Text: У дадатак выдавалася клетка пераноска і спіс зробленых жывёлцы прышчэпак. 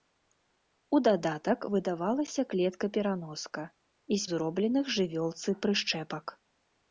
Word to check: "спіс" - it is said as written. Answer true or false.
false